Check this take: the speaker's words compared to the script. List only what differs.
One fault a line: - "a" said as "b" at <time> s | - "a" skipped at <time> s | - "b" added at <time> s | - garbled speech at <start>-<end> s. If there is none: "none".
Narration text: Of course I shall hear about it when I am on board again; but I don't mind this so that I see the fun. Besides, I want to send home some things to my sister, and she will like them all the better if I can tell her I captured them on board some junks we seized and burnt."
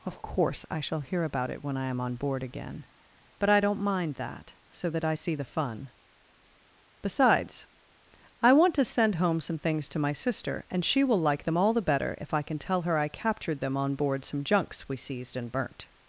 - "this" said as "that" at 4.2 s